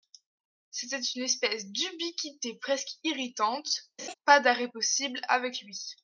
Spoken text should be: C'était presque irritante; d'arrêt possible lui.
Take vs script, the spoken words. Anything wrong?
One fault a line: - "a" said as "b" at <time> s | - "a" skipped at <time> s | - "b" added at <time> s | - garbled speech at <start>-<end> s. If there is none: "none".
- "une espèce d'ubiquité" added at 1.0 s
- "pas" added at 4.3 s
- "avec" added at 5.3 s